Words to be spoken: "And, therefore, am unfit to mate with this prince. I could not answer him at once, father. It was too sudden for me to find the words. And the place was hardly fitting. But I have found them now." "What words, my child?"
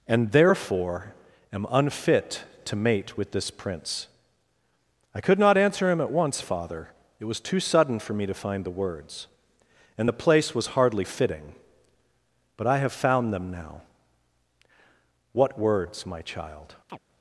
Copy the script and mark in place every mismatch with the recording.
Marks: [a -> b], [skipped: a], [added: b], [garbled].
"And, therefore, am unfit to mate with this prince. I could not answer him at once, father. It was too sudden for me to find the words. And the place was hardly fitting. But I have found them now." "What words, my child?"